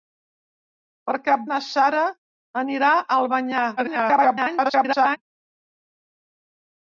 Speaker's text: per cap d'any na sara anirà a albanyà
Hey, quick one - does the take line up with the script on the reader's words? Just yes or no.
no